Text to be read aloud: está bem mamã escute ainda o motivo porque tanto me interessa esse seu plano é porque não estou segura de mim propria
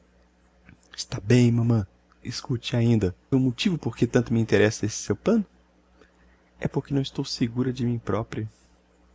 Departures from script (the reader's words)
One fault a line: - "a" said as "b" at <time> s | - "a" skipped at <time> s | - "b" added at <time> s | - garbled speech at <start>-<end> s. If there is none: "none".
none